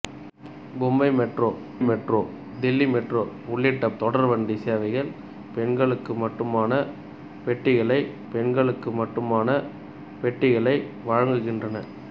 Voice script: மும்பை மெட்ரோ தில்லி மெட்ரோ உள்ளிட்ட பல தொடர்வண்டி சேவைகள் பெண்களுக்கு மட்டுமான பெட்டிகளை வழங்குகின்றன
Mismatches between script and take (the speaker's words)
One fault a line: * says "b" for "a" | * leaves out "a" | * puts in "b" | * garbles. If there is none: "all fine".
* puts in "மெட்ரோ"
* leaves out "பல"
* puts in "பெண்களுக்கு மட்டுமான பெட்டிகளை"